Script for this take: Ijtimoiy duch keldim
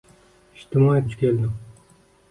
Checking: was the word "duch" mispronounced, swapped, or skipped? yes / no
no